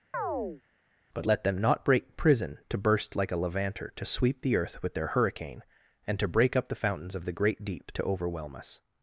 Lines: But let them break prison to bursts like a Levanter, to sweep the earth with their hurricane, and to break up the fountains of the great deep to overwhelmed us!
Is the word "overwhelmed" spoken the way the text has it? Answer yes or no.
no